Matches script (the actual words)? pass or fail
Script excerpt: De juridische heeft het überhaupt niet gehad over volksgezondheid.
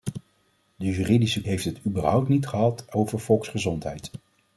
pass